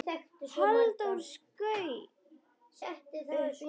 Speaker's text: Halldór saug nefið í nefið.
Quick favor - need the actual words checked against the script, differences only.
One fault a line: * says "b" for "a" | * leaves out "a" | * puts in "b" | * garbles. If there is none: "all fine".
* says "upp" for "nefið"